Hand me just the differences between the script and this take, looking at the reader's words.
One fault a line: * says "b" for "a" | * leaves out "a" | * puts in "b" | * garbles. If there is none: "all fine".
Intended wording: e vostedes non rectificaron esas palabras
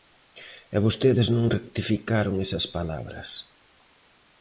all fine